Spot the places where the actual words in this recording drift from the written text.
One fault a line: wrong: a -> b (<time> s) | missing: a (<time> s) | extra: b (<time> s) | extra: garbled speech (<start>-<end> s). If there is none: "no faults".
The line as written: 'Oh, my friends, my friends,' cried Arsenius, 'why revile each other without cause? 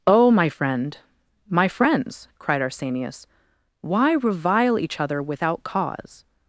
wrong: friends -> friend (0.5 s)